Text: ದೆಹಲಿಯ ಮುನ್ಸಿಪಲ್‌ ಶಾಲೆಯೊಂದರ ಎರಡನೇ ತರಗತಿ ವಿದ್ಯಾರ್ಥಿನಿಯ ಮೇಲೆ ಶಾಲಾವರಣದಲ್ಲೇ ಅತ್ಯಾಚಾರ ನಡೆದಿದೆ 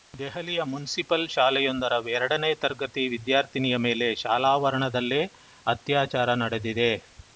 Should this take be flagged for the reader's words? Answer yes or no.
no